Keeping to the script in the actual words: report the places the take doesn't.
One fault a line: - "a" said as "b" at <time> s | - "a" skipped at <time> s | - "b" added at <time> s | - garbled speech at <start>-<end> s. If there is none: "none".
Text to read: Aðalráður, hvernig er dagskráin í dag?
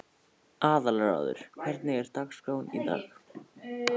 none